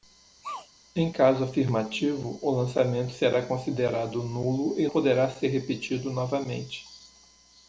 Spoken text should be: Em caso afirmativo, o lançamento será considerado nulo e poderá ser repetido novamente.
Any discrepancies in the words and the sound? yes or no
yes